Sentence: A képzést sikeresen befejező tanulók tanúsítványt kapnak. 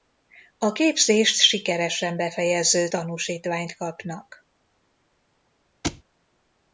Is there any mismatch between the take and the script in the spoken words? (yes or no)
yes